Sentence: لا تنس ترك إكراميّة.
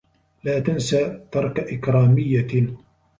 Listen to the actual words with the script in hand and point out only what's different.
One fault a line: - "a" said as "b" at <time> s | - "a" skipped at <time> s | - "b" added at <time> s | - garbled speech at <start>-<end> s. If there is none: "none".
none